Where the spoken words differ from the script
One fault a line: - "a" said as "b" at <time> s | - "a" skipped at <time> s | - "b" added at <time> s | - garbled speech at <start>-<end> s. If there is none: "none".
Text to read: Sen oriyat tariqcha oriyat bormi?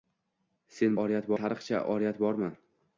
none